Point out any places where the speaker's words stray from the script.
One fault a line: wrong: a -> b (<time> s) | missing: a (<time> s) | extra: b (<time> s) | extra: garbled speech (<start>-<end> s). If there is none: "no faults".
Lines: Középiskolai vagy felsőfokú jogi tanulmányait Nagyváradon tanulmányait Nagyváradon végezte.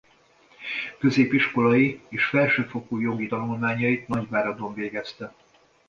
wrong: vagy -> és (2.1 s)
missing: tanulmányait Nagyváradon (4.7 s)